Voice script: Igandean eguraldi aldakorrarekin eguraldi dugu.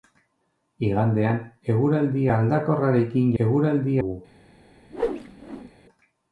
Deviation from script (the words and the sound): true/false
true